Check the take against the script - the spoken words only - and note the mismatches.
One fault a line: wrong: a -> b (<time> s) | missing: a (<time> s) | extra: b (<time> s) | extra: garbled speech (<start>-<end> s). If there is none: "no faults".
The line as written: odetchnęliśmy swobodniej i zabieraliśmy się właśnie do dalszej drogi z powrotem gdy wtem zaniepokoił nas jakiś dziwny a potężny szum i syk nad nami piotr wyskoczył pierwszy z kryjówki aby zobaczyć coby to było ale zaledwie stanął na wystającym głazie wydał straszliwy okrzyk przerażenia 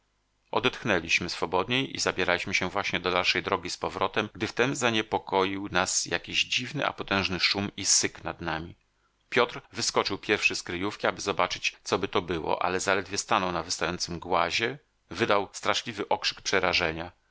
no faults